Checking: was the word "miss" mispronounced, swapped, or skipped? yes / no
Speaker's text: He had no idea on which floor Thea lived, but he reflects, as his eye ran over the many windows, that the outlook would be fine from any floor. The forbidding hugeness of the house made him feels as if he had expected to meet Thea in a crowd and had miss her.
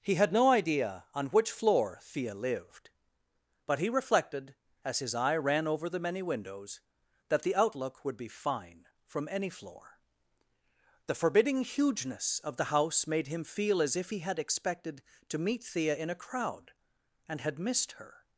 yes